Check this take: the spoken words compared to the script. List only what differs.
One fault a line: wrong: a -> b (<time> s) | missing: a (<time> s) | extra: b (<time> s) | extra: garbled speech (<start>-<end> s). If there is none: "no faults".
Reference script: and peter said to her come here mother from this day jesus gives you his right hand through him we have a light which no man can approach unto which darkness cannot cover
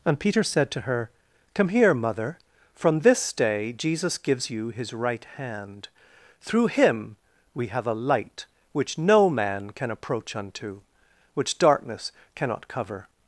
no faults